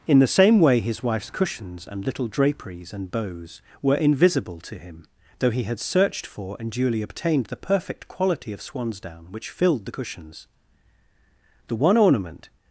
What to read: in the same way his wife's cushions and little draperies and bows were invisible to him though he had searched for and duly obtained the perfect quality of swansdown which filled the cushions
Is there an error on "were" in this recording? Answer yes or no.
no